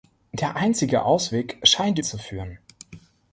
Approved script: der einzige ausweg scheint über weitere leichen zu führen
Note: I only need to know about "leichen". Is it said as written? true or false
false